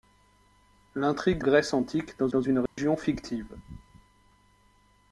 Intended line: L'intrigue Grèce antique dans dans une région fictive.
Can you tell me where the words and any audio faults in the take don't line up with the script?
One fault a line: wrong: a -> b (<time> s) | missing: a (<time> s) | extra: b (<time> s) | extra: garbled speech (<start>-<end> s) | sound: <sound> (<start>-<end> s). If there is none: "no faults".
sound: dropout (2.7-2.8 s)